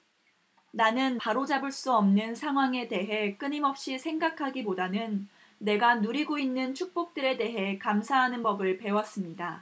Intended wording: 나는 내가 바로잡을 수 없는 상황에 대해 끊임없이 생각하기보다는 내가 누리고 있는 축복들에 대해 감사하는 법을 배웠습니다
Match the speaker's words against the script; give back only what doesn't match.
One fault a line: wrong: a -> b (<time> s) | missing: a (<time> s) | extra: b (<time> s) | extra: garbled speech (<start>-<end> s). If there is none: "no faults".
missing: 내가 (1.2 s)